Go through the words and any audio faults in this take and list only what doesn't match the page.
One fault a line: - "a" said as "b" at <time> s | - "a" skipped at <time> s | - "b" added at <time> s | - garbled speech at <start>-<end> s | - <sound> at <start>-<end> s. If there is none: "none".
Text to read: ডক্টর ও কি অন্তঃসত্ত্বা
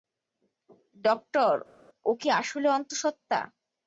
- "আসলে" added at 2.4 s